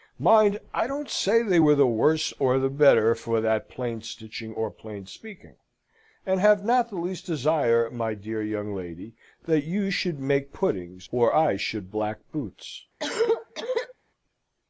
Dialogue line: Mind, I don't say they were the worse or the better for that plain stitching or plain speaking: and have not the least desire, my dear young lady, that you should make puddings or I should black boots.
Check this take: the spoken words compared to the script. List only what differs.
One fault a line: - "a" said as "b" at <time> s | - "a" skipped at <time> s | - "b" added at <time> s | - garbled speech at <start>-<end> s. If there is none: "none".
none